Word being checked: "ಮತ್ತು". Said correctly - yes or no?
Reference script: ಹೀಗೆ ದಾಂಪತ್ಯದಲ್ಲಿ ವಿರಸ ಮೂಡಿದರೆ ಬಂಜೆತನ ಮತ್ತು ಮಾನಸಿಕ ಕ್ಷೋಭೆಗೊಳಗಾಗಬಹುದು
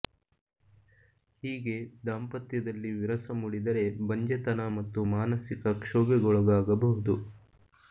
yes